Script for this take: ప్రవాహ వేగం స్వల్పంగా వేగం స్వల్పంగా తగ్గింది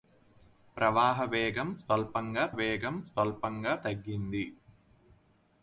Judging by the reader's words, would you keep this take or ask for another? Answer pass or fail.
pass